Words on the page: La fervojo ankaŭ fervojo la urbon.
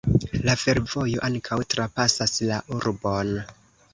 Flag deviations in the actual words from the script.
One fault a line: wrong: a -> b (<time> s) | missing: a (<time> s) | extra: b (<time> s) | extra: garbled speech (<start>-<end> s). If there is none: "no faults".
wrong: fervojo -> trapasas (1.8 s)